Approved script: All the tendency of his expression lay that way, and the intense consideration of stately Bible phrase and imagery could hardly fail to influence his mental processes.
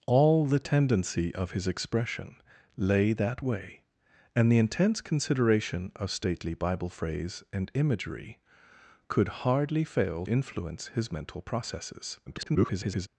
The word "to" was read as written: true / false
false